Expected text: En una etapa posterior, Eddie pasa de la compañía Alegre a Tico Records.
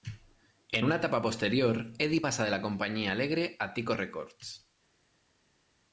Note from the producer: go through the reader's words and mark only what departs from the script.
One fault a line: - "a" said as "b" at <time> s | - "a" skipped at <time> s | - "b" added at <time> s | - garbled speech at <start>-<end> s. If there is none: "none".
none